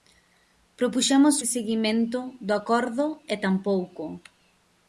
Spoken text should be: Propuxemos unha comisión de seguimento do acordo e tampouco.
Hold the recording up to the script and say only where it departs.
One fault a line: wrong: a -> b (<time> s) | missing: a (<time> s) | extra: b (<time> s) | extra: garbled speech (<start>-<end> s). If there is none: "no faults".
missing: unha comisión (1.4 s)